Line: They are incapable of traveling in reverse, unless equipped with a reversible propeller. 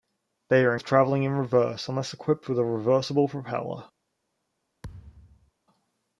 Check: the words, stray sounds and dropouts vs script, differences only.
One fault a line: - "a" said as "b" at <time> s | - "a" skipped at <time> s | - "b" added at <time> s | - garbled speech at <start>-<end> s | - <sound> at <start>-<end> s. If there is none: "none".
- "incapable" skipped at 0.8 s
- thud at 4.8-5.5 s